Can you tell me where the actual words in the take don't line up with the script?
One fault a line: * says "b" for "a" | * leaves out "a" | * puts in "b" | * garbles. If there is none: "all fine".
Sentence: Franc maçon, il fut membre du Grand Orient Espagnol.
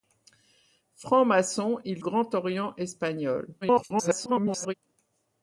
* leaves out "fut membre du"
* garbles